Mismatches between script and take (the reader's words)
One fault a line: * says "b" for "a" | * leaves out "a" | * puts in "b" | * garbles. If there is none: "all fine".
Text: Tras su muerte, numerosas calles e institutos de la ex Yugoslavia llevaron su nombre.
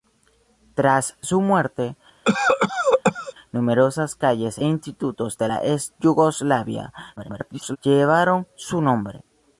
* leaves out "e"
* garbles